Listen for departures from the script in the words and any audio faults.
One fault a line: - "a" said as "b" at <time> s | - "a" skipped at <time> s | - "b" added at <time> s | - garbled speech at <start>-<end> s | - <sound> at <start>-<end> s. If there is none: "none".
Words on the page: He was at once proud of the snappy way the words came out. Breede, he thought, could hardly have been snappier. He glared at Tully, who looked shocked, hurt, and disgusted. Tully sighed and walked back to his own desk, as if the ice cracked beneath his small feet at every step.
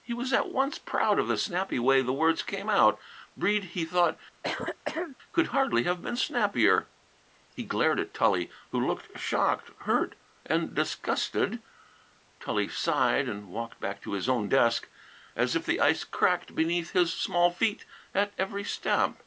- throat clearing at 4.4-5.2 s